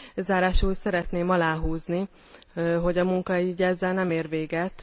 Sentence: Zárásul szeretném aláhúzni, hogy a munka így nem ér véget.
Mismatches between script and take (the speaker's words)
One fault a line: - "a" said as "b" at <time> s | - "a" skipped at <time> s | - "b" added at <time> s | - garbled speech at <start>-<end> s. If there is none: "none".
- "ezzel" added at 3.6 s